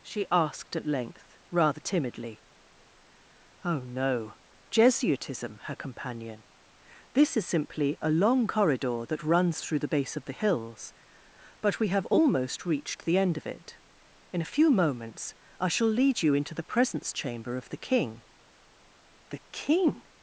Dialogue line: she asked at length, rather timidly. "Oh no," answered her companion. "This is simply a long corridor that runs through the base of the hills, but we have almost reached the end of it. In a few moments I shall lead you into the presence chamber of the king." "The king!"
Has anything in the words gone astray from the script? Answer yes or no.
yes